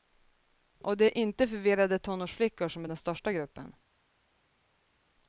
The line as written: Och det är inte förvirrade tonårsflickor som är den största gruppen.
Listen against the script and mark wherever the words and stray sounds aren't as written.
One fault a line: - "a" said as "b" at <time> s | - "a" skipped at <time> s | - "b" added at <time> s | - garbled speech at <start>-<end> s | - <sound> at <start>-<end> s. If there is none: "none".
none